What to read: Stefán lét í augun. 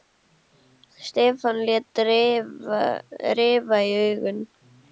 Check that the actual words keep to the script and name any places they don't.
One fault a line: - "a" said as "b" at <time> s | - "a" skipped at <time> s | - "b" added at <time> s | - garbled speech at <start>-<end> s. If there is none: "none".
- "rifa" added at 3.4 s